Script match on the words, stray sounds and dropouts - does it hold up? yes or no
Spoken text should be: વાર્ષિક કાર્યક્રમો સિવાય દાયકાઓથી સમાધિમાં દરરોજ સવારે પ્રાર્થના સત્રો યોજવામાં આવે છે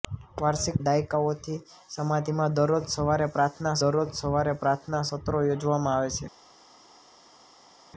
no